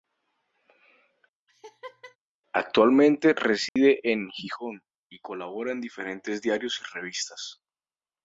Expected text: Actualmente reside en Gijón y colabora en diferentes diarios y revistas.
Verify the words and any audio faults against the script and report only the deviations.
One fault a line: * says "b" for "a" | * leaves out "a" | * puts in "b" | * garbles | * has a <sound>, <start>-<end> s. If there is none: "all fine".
* has a laugh, 1.5-2.2 s
* has a dropout, 3.7-3.8 s